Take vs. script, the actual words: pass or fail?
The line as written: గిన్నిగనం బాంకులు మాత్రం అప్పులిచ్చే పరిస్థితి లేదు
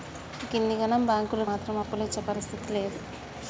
pass